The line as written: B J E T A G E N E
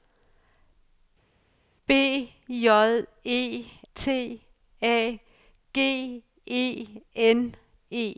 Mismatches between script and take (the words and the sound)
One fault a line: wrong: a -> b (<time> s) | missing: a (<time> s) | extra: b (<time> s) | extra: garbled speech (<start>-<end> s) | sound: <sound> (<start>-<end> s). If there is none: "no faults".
no faults